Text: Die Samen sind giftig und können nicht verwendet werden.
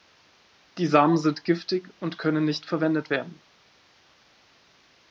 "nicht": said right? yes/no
yes